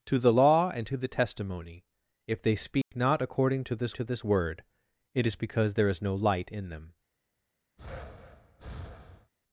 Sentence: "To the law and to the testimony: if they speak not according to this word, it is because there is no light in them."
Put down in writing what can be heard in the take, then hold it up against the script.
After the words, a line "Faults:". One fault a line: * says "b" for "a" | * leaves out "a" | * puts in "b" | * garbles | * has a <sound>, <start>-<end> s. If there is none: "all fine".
"To the law and to the testimony: if they speak not according to this to this word, it is because there is no light in them."
Faults:
* has a dropout, 2.8-2.9 s
* puts in "to this"
* has a breath, 7.8-9.3 s